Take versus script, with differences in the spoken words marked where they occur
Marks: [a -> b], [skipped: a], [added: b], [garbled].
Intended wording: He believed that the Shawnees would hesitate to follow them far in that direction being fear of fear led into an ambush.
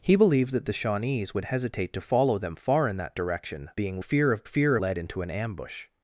He believed that the Shawnees would hesitate to follow them far in that direction being fear of fear led into an ambush.